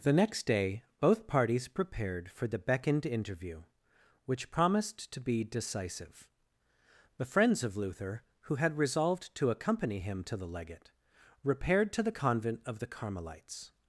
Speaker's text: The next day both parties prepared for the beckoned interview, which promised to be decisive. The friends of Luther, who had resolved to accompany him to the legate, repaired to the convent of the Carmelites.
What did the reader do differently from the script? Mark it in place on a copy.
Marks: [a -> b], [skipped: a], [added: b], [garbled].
The next day both parties prepared for the beckoned interview, which promised to be decisive. The friends of Luther, who had resolved to accompany him to the legate, repaired to the convent of the Carmelites.